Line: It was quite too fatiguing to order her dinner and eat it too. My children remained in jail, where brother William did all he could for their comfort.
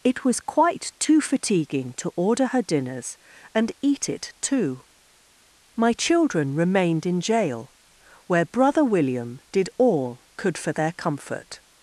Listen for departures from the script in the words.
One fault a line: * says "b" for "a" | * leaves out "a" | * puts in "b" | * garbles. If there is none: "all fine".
* says "dinners" for "dinner"
* leaves out "he"